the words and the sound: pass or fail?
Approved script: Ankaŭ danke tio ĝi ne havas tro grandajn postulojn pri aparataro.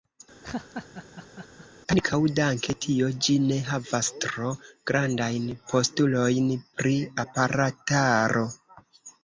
fail